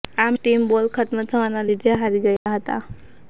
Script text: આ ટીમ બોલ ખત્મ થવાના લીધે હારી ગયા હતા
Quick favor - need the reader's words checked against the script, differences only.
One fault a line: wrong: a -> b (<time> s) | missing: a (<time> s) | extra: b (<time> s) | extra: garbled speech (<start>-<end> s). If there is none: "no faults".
no faults